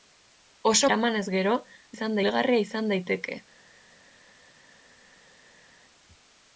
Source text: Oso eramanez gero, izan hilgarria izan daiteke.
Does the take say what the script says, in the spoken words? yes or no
yes